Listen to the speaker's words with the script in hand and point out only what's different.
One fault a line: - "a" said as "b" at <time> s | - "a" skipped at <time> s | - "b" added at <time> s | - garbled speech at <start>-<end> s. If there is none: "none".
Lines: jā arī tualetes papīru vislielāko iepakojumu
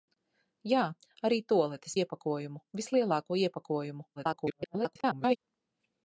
- "papīru" said as "iepakojumu" at 2.0 s
- garbled speech at 4.2-5.4 s